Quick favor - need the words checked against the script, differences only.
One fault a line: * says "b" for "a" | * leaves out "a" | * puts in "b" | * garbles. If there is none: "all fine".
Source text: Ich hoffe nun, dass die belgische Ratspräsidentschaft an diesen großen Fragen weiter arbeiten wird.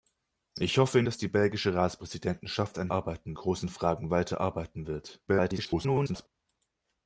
* leaves out "nun"
* says "arbeiten" for "diesen"
* garbles